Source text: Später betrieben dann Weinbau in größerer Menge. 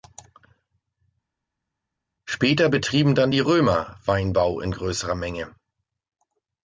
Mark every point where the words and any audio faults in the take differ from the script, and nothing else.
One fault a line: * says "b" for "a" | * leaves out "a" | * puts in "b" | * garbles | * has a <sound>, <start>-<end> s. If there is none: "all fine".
* puts in "die Römer"